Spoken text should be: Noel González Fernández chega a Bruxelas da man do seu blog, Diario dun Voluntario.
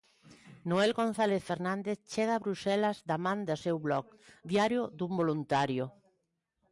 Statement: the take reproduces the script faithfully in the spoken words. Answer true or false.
true